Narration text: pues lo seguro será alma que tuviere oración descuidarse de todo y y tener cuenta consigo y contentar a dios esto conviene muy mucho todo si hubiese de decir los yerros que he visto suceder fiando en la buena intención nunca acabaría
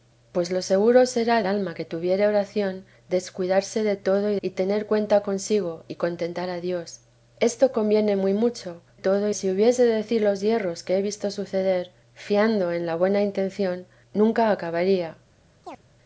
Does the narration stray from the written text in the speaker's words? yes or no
no